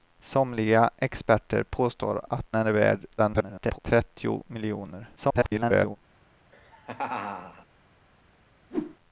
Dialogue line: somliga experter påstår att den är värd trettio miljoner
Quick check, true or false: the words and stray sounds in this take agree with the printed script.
false